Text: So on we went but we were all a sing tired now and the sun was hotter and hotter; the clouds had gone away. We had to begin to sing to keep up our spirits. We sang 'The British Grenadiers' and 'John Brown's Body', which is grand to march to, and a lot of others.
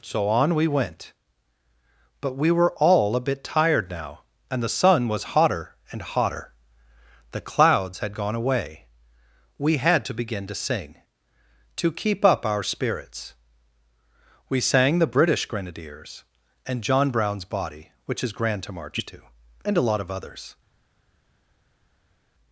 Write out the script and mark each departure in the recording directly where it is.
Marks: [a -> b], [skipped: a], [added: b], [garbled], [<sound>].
So on we went but we were all a [sing -> bit] tired now and the sun was hotter and hotter; the clouds had gone away. We had to begin to sing to keep up our spirits. We sang 'The British Grenadiers' and 'John Brown's Body', which is grand to march to, and a lot of others.